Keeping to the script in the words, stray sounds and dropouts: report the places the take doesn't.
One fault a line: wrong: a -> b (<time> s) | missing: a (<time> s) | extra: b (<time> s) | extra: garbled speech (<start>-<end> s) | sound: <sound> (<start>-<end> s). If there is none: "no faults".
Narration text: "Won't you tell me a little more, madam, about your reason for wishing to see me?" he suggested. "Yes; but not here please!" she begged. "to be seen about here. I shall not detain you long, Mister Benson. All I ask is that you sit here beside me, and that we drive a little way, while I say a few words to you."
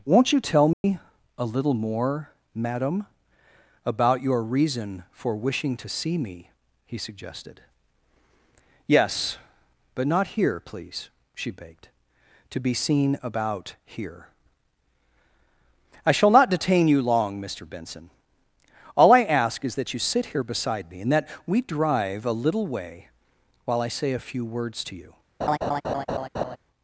sound: dropout (0.7-0.8 s)
sound: laugh (25.4-26.6 s)